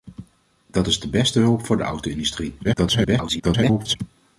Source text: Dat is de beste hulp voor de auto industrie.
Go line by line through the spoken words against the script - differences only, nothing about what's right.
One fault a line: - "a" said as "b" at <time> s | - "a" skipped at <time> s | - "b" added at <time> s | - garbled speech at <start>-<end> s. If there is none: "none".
- garbled speech at 2.6-4.0 s